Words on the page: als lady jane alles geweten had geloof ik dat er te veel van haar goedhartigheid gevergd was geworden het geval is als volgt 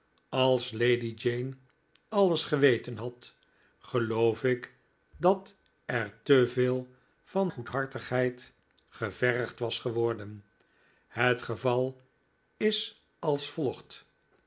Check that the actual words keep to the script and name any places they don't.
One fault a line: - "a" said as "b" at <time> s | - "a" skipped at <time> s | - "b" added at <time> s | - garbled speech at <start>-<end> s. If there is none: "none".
- "haar" skipped at 7.5 s